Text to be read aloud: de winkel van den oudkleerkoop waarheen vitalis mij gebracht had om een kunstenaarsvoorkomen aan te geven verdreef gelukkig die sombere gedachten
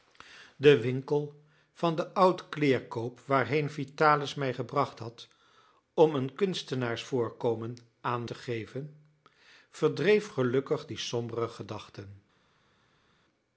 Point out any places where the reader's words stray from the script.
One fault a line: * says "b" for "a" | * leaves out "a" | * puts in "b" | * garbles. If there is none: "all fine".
all fine